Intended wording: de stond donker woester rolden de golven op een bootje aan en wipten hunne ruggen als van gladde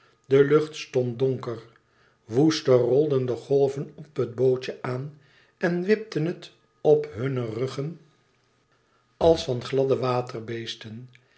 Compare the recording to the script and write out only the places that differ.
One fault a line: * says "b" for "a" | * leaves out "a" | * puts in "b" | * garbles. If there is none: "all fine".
* puts in "lucht"
* says "het" for "een"
* puts in "het op"